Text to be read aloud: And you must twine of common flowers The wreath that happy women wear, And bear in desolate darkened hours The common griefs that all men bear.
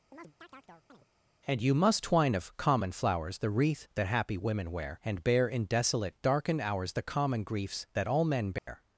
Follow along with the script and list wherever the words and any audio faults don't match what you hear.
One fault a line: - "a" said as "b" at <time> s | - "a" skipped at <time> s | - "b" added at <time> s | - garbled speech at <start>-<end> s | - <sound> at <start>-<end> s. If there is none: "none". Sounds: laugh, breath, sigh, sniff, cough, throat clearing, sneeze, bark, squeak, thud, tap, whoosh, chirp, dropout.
- chirp at 0.1-1.1 s
- dropout at 8.6-8.7 s